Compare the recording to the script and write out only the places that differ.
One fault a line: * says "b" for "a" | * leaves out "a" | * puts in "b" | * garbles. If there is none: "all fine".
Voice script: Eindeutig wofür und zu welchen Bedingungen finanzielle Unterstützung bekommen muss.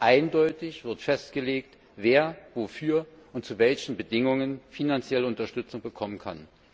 * puts in "wird festgelegt wer"
* says "kann" for "muss"